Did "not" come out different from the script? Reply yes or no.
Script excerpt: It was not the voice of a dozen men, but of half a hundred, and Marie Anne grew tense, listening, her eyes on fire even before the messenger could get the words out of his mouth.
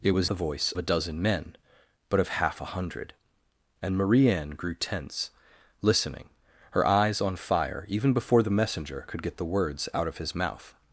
yes